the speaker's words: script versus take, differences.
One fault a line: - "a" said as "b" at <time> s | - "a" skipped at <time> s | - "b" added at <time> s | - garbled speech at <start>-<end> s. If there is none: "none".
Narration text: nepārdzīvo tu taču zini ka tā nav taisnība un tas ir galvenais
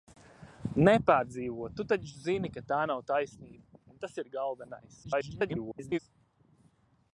- garbled speech at 5.0-6.0 s